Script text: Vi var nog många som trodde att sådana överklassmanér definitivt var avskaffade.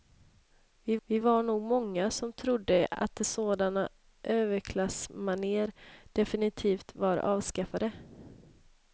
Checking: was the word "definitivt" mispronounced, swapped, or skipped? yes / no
no